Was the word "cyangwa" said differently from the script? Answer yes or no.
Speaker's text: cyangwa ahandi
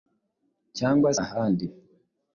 no